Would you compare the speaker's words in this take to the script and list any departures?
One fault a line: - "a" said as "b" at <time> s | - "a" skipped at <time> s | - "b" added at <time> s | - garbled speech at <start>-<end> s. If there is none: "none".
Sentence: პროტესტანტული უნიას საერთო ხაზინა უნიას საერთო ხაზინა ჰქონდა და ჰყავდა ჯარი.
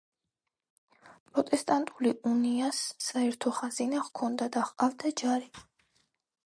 - "უნიას საერთო ხაზინა" skipped at 4.1 s